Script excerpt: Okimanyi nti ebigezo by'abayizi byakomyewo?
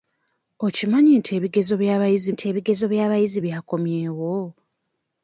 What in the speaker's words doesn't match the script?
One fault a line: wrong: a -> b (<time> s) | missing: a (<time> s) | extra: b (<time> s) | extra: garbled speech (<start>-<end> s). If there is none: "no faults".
extra: nti ebigezo by'abayizi (2.3 s)